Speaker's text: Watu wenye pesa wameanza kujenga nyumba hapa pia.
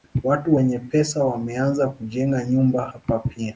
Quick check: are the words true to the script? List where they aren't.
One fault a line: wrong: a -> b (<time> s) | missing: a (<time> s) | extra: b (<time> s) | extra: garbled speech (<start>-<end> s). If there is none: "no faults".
no faults